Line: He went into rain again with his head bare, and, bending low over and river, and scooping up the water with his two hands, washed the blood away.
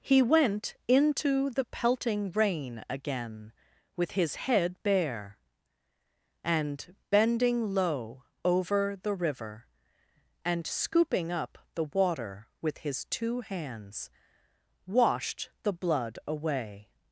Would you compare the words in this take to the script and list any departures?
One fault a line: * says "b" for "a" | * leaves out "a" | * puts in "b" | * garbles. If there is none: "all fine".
* puts in "the pelting"
* says "the" for "and"